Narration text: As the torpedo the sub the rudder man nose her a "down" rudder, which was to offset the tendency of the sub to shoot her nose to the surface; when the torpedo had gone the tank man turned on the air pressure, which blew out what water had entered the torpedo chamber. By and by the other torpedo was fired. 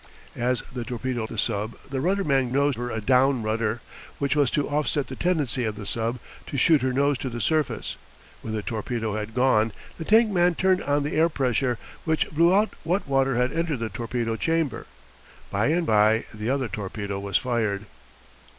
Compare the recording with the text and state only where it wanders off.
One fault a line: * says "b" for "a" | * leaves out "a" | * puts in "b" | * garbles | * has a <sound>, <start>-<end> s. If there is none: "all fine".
all fine